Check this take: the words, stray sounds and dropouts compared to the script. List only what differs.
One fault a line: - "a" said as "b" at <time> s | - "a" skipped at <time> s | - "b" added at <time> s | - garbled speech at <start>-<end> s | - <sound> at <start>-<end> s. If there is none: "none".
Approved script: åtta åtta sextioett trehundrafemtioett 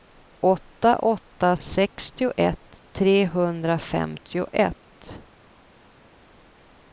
none